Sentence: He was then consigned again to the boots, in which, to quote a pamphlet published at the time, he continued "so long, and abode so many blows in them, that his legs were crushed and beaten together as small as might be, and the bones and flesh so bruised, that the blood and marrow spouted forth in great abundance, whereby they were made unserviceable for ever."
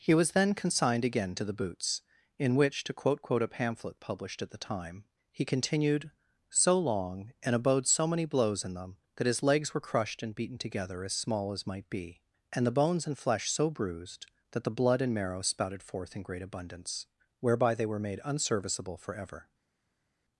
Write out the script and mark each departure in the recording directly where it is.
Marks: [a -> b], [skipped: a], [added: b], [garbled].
He was then consigned again to the boots, in which, to quote [added: quote] a pamphlet published at the time, he continued "so long, and abode so many blows in them, that his legs were crushed and beaten together as small as might be, and the bones and flesh so bruised, that the blood and marrow spouted forth in great abundance, whereby they were made unserviceable for ever."